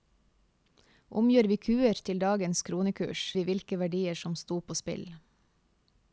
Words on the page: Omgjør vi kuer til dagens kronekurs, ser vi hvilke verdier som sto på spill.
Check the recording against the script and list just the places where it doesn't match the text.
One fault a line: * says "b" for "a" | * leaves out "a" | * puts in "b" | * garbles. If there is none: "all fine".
* leaves out "ser"